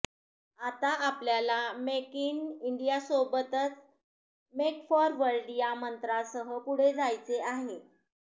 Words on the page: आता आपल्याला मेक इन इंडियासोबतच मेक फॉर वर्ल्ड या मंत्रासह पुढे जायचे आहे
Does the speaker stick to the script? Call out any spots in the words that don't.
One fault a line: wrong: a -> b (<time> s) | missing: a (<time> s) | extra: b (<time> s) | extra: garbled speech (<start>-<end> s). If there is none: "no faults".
no faults